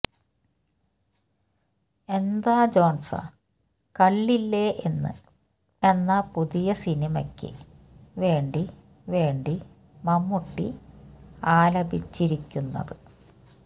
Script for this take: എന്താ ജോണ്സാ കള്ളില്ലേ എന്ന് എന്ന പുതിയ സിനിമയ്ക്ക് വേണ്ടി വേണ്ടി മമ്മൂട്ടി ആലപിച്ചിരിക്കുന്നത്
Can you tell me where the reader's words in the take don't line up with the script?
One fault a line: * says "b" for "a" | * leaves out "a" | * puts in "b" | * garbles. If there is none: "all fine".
all fine